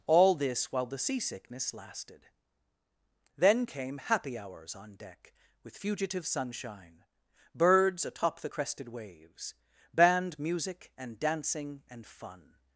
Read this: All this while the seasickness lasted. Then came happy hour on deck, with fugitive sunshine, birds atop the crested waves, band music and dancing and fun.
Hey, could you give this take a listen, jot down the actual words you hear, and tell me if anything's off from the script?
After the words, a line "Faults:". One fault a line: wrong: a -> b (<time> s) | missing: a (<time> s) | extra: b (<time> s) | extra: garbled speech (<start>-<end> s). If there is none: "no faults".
All this while the seasickness lasted. Then came happy hours on deck, with fugitive sunshine, birds atop the crested waves, band music and dancing and fun.
Faults:
wrong: hour -> hours (4.4 s)